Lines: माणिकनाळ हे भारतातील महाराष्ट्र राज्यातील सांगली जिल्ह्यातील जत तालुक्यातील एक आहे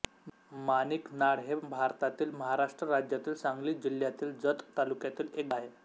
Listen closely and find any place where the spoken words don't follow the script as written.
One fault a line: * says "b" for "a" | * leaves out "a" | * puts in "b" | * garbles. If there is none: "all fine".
all fine